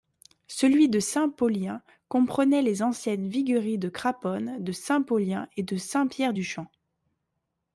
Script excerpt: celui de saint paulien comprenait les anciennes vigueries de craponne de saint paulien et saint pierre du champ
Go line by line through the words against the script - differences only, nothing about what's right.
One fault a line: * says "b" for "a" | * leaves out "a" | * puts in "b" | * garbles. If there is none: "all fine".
* puts in "de"